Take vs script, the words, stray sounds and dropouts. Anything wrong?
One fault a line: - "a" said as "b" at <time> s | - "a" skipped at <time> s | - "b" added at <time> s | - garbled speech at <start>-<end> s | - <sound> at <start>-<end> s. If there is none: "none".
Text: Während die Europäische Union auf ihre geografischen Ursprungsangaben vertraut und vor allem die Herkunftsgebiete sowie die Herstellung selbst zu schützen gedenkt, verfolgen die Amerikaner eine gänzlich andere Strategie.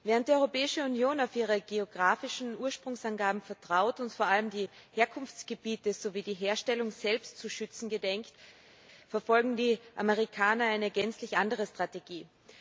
none